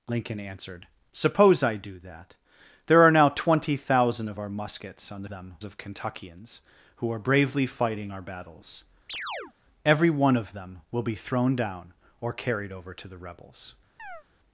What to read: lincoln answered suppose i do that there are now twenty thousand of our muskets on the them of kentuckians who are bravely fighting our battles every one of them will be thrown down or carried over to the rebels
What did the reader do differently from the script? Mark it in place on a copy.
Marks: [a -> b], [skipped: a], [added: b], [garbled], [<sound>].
lincoln answered suppose i do that there are now twenty thousand of our muskets on the them of kentuckians who are bravely fighting our battles [chirp] every one of them will be thrown down or carried over to the rebels [chirp]